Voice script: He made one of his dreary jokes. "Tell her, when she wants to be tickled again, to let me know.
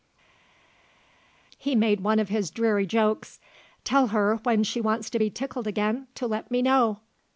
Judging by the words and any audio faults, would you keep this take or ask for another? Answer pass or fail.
pass